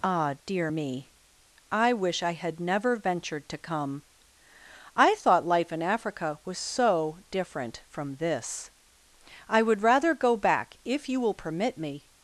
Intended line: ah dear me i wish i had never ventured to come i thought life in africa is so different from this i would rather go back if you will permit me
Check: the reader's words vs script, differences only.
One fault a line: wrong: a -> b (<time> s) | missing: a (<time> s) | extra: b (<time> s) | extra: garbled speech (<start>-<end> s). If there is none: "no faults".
wrong: is -> was (6.5 s)